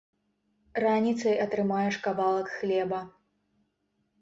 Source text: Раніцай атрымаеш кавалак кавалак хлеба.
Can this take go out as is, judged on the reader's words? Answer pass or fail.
fail